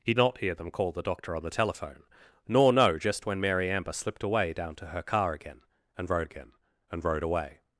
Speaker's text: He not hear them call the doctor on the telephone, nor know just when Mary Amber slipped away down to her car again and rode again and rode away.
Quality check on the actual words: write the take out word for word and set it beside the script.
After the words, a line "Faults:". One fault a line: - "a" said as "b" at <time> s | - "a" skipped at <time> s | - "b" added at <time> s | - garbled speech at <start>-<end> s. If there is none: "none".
He not hear them call the doctor on the telephone, nor know just when Mary Amber slipped away down to her car again and rode again and rode away.
Faults:
none